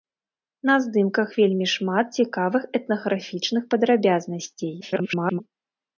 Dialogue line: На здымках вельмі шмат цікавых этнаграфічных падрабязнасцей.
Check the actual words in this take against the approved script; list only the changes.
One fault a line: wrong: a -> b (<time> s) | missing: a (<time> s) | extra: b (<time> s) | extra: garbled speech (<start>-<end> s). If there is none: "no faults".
extra: garbled speech (4.8-5.4 s)